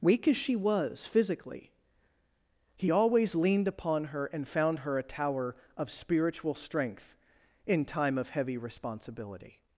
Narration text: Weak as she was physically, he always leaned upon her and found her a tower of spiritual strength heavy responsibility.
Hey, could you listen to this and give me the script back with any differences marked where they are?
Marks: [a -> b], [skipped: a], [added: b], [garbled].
Weak as she was physically, he always leaned upon her and found her a tower of spiritual strength [added: in time of] heavy responsibility.